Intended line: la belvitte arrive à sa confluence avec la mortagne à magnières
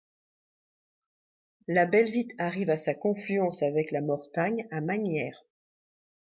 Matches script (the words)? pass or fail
pass